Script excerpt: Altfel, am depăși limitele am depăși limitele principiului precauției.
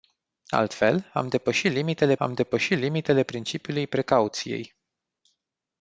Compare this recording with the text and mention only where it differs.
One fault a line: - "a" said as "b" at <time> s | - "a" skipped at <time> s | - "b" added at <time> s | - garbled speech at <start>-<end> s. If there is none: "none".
none